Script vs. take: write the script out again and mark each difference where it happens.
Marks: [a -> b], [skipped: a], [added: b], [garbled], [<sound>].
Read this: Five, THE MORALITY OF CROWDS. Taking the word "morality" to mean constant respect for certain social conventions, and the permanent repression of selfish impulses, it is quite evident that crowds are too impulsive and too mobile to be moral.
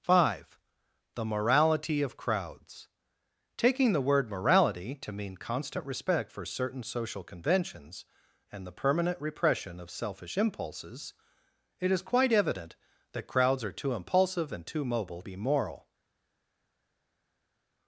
Five, THE MORALITY OF CROWDS. Taking the word "morality" to mean constant respect for certain social conventions, and the permanent repression of selfish impulses, it is quite evident that crowds are too impulsive and too mobile [skipped: to] be moral.